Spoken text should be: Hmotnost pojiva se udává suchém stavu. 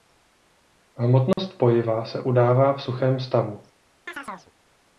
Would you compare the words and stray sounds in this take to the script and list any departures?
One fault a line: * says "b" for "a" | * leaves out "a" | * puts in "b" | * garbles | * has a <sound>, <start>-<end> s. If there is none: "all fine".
* has a dropout, 1.3-1.4 s
* puts in "v"
* has a chirp, 4.1-4.5 s